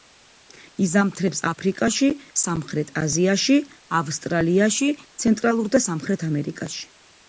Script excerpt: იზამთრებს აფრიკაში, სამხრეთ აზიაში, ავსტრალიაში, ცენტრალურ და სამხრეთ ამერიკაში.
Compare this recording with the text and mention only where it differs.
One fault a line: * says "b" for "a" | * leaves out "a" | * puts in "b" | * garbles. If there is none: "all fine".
all fine